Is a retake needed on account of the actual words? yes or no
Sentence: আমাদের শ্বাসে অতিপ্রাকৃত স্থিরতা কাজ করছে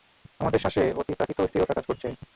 no